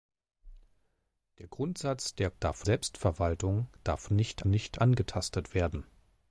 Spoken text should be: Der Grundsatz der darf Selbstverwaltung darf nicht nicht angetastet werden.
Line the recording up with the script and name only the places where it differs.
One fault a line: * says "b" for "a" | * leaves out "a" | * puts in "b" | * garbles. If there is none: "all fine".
all fine